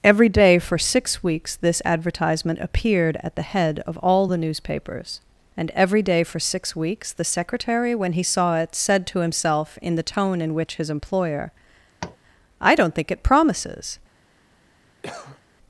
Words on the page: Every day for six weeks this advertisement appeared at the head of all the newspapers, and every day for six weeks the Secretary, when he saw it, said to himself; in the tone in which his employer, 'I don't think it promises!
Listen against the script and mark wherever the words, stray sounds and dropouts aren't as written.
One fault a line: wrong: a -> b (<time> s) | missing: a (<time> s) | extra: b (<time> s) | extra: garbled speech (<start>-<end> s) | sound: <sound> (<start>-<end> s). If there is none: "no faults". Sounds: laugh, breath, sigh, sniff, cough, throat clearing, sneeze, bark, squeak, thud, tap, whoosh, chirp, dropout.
sound: tap (12.0-12.2 s)
sound: cough (15.0-15.4 s)